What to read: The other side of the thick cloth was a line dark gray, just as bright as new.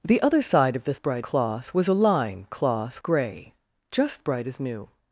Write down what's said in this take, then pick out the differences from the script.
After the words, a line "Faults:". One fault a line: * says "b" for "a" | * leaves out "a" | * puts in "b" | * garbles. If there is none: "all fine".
The other side of the bright cloth was a line cloth gray, just bright as new.
Faults:
* says "bright" for "thick"
* says "cloth" for "dark"
* leaves out "as"